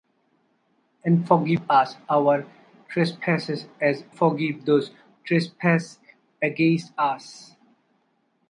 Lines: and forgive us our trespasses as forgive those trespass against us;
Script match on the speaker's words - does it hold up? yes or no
yes